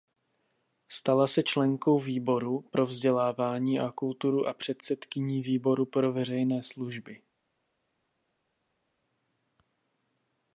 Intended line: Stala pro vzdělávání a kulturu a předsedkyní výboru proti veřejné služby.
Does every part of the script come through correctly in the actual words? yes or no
no